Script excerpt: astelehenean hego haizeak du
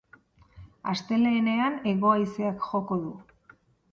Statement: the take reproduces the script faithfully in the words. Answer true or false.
false